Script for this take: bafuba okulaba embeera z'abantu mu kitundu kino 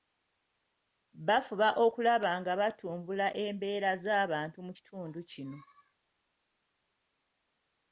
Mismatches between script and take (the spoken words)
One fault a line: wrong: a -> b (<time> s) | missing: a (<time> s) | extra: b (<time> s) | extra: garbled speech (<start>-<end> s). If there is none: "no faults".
extra: nga batumbula (2.4 s)